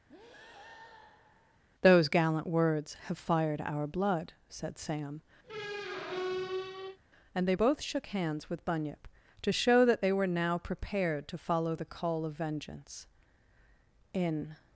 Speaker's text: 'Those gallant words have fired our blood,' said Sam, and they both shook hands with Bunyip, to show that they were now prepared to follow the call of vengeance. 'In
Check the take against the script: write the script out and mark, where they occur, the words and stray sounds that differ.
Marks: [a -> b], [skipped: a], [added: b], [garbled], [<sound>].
[breath] 'Those gallant words have fired our blood,' said Sam, [squeak] and they both shook hands with Bunyip, to show that they were now prepared to follow the call of vengeance. 'In